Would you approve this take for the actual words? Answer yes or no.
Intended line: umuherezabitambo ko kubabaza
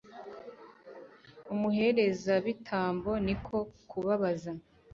no